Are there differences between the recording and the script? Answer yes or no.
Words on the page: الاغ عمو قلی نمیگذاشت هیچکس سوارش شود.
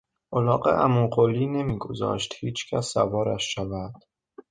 no